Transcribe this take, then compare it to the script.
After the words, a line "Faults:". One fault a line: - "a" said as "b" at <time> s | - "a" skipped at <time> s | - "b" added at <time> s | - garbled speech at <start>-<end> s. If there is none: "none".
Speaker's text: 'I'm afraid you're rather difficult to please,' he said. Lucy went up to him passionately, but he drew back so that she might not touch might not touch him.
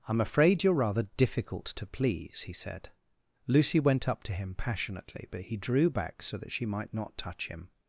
'I'm afraid you're rather difficult to please,' he said. Lucy went up to him passionately, but he drew back so that she might not touch him.
Faults:
- "might not touch" skipped at 7.5 s